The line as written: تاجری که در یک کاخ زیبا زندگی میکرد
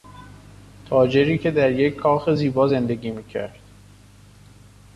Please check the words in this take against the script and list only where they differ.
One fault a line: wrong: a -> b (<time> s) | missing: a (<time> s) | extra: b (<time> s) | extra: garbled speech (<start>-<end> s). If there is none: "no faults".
no faults